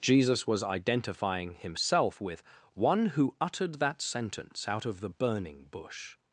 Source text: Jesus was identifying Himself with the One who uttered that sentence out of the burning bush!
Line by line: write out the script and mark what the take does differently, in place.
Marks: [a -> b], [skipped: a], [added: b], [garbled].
Jesus was identifying Himself with [skipped: the] One who uttered that sentence out of the burning bush!